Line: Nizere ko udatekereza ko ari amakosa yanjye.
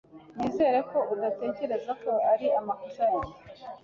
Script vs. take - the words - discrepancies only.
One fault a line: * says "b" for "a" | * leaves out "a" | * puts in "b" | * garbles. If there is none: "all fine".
all fine